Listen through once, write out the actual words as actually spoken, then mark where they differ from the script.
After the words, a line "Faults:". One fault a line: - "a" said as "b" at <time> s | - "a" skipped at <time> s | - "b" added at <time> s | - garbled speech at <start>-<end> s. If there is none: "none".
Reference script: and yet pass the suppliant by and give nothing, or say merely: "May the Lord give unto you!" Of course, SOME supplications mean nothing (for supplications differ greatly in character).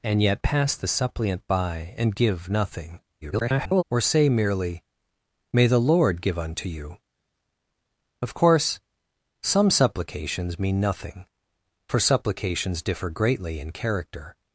and yet pass the suppliant by and give nothing, [garbled] or say merely: "May the Lord give unto you!" Of course, SOME supplications mean nothing (for supplications differ greatly in character).
Faults:
- garbled speech at 3.2-3.8 s